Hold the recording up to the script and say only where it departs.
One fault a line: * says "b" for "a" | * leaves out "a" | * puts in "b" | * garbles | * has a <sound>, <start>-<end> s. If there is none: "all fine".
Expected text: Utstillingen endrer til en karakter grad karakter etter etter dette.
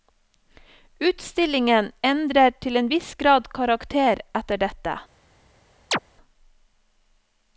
* says "viss" for "karakter"
* leaves out "etter"
* has a chirp, 5.9-6.0 s